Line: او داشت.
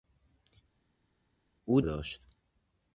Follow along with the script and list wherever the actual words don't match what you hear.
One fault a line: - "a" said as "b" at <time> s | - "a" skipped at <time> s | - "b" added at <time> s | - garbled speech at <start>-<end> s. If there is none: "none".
none